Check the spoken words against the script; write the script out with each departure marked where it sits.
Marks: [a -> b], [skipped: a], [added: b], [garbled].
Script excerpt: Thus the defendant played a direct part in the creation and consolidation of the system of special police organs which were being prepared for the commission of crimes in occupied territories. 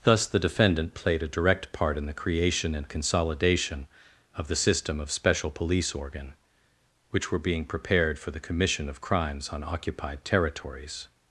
Thus the defendant played a direct part in the creation and consolidation of the system of special police [organs -> organ] which were being prepared for the commission of crimes [in -> on] occupied territories.